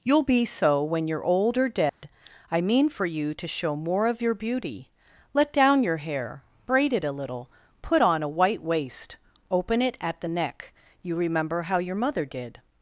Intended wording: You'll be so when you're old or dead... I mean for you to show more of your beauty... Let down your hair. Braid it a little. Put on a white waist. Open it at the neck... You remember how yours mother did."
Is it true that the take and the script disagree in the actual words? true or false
true